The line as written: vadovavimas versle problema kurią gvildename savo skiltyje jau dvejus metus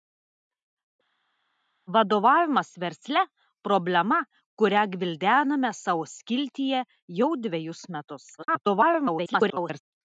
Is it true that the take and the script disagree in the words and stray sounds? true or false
true